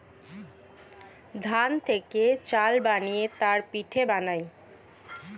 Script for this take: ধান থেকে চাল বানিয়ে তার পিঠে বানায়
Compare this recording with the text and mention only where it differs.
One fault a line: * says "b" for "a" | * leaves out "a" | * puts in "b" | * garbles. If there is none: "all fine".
all fine